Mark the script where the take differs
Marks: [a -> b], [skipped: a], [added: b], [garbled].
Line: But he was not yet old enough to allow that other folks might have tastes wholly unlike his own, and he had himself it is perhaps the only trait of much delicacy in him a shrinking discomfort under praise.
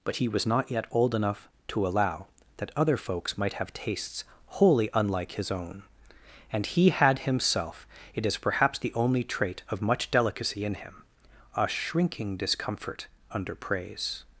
But he was not yet old enough to allow that other folks might have tastes wholly unlike his own, and he had himself it is perhaps the only trait of much delicacy in him a shrinking discomfort under praise.